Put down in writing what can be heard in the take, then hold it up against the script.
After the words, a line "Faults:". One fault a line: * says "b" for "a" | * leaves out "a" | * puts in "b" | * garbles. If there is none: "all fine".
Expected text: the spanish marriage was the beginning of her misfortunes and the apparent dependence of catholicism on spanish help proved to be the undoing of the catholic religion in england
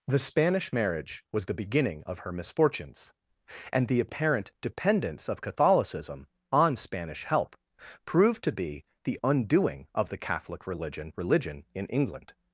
the spanish marriage was the beginning of her misfortunes and the apparent dependence of catholicism on spanish help proved to be the undoing of the catholic religion religion in england
Faults:
* puts in "religion"